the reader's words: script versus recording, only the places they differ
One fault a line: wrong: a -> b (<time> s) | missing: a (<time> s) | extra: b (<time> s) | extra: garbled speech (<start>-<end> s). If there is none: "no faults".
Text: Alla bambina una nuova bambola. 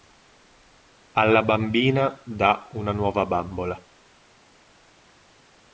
extra: dà (2.2 s)